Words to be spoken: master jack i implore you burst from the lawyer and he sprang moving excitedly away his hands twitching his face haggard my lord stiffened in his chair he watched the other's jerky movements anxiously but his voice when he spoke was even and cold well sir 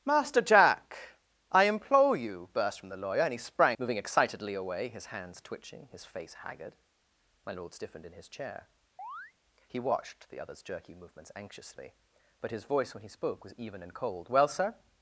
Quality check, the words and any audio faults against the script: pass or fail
fail